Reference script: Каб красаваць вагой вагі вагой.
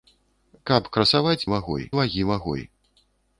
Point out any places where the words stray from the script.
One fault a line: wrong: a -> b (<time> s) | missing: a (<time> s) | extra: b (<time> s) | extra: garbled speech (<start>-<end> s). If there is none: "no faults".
no faults